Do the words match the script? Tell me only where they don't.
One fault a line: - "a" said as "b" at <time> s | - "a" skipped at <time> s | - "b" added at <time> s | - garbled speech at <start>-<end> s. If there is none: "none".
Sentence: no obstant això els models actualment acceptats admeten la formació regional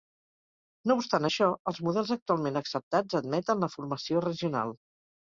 none